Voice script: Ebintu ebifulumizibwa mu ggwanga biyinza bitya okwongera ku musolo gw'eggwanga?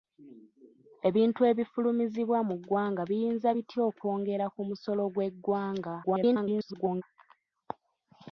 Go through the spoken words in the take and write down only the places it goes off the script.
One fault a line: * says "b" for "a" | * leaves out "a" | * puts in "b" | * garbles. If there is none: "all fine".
* garbles